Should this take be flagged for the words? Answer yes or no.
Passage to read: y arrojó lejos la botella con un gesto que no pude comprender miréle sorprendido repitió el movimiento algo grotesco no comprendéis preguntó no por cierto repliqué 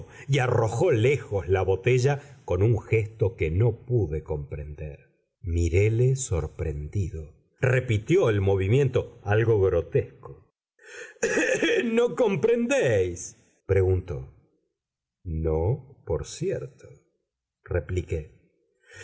no